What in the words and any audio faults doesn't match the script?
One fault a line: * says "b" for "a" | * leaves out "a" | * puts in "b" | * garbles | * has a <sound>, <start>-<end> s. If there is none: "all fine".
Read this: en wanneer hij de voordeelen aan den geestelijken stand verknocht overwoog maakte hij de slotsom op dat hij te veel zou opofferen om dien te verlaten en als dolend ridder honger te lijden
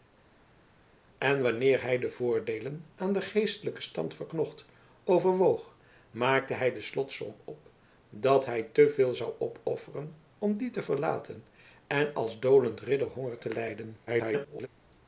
* garbles